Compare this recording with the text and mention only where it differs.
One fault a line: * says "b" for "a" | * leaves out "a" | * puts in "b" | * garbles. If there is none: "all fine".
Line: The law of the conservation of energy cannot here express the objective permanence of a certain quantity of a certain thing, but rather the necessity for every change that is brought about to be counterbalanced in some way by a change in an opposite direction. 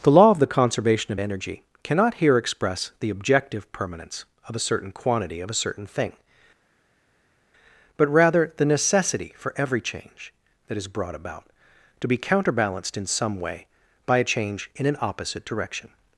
all fine